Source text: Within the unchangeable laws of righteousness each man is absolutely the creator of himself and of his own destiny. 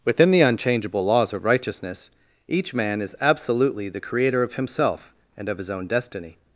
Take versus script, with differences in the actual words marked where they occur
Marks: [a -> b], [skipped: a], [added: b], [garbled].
Within the unchangeable laws of righteousness each man is absolutely the creator of himself and of his own destiny.